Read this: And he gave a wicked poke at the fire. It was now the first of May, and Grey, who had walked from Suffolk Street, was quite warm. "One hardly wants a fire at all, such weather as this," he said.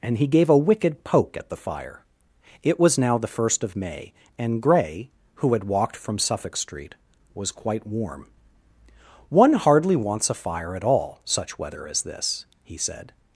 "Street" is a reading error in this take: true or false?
false